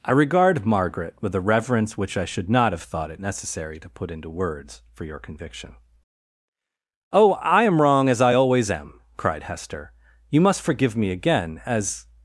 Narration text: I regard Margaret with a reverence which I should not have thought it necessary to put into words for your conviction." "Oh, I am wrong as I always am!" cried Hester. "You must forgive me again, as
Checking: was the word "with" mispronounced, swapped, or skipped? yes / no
no